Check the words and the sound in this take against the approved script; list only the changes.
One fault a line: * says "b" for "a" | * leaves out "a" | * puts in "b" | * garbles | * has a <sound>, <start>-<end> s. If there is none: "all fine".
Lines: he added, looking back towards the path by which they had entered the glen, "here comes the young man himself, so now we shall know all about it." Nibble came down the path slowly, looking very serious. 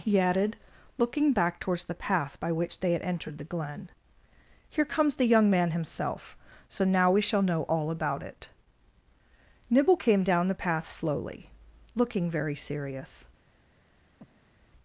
* has a breath, 14.2-14.7 s